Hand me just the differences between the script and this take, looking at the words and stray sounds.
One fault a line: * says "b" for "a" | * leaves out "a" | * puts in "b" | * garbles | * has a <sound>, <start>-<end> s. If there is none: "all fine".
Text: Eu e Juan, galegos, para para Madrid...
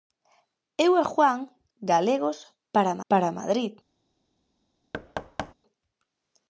* has a thud, 4.9-5.5 s